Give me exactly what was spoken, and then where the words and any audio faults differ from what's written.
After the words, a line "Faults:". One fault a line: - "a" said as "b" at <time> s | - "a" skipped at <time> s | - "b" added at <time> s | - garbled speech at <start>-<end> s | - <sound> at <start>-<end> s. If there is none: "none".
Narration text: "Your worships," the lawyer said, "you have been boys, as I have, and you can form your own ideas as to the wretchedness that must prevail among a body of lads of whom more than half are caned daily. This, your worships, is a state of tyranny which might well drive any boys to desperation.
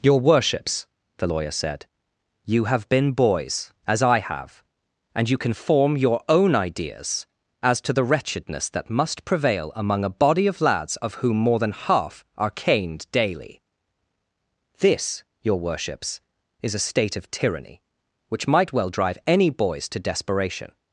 "Your worships," the lawyer said, "you have been boys, as I have, and you can form your own ideas as to the wretchedness that must prevail among a body of lads of whom more than half are caned daily. This, your worships, is a state of tyranny which might well drive any boys to desperation.
Faults:
none